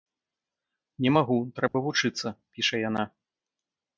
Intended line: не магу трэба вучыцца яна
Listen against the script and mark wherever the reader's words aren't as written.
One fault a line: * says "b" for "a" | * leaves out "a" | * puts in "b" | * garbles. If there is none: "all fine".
* puts in "піша"